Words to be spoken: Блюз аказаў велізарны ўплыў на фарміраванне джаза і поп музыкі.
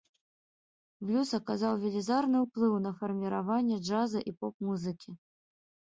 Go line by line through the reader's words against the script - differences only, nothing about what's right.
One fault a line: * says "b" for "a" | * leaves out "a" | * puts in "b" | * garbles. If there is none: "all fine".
all fine